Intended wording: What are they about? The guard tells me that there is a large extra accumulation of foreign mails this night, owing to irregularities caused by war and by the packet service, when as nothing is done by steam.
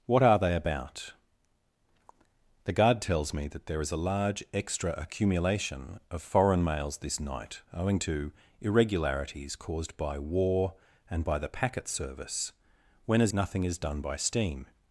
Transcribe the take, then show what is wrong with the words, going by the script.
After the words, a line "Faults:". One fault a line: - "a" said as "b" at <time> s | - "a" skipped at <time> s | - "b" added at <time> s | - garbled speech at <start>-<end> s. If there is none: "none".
What are they about? The guard tells me that there is a large extra accumulation of foreign mails this night, owing to irregularities caused by war and by the packet service, when as nothing is done by steam.
Faults:
none